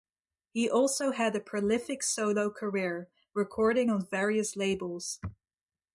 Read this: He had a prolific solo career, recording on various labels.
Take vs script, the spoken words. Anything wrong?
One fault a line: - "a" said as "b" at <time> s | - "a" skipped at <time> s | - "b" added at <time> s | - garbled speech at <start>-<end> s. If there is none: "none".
- "also" added at 0.7 s